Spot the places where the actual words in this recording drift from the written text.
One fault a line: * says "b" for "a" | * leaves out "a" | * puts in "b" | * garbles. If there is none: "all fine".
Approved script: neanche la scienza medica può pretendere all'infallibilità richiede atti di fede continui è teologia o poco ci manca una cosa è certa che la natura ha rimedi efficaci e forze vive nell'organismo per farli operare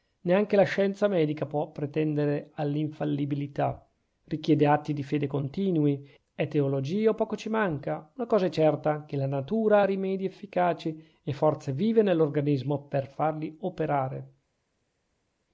all fine